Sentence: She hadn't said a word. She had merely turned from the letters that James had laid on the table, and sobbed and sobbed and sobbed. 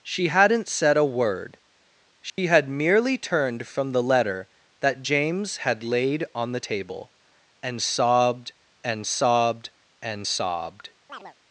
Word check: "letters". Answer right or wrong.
wrong